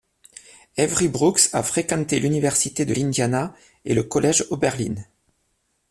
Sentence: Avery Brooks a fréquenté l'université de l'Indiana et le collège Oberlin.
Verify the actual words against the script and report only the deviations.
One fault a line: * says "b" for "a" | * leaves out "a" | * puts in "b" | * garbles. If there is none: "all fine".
all fine